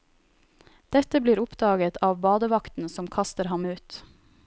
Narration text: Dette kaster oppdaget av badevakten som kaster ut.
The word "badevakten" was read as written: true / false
true